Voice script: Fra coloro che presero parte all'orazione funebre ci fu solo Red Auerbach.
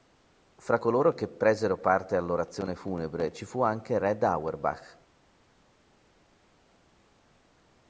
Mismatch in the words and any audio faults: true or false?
true